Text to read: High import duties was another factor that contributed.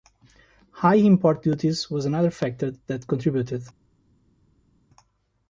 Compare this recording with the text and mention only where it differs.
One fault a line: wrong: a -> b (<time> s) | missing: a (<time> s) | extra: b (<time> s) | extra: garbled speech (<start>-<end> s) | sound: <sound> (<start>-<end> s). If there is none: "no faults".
no faults